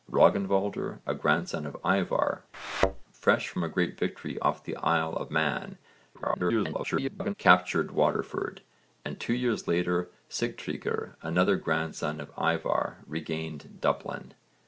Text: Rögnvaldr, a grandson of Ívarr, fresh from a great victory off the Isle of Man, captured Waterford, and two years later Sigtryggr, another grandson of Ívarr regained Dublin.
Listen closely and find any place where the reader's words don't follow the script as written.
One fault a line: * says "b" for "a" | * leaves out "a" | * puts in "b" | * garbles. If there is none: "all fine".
* garbles